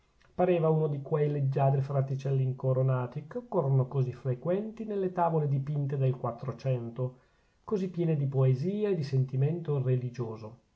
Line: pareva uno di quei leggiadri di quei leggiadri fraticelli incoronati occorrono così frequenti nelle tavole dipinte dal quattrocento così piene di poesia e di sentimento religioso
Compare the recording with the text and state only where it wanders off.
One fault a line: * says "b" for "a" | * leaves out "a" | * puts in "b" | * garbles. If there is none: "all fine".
* leaves out "di quei leggiadri"
* puts in "che"
* says "del" for "dal"